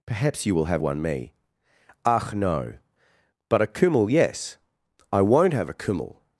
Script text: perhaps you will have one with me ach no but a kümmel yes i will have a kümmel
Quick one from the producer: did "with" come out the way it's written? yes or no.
no